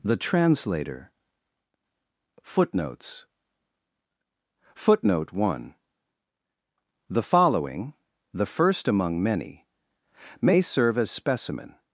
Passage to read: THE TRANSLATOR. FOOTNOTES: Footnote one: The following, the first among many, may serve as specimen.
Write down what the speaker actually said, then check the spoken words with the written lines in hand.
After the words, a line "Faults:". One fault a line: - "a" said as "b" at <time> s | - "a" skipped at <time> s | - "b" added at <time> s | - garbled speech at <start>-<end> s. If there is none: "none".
THE TRANSLATOR. FOOTNOTES: Footnote one: The following, the first among many, may serve as specimen.
Faults:
none